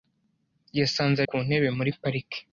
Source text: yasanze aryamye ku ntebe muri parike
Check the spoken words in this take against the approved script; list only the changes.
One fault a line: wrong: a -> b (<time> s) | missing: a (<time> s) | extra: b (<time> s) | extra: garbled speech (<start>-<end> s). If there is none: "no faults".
missing: aryamye (1.2 s)